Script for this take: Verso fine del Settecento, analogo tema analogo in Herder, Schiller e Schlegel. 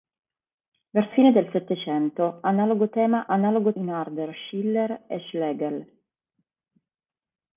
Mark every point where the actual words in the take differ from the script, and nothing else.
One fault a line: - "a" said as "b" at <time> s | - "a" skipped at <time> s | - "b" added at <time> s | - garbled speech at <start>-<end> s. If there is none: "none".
none